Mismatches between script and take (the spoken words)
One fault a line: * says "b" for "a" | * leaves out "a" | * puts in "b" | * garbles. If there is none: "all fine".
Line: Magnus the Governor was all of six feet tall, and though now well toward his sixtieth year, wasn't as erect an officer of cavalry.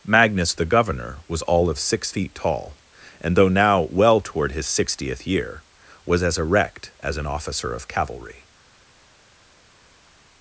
* says "was" for "wasn't"
* puts in "as"